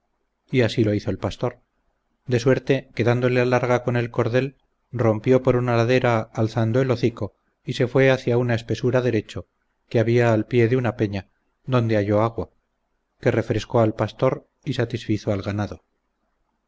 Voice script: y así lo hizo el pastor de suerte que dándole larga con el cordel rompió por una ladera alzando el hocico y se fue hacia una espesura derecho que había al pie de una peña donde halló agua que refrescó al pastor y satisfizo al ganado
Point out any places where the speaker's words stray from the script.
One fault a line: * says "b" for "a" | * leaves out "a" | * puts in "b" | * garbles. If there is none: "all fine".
all fine